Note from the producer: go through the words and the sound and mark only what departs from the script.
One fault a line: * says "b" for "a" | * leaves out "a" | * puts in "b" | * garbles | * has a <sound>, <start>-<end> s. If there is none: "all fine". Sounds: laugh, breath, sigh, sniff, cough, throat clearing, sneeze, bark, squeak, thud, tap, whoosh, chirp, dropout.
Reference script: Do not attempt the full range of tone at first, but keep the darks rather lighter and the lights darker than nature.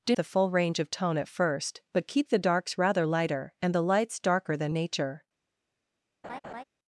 * leaves out "not attempt"
* has a laugh, 6.2-6.6 s